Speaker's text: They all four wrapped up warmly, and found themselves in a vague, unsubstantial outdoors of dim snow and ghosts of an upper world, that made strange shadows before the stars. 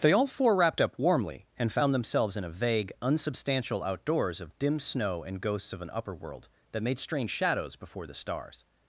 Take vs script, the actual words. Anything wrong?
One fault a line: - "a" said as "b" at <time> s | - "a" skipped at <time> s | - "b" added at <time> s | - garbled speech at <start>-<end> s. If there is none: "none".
none